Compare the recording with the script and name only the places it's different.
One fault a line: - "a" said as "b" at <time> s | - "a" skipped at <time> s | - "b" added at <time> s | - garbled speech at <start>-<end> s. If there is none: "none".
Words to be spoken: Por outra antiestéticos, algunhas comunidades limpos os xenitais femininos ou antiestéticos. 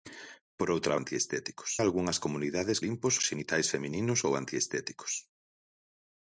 none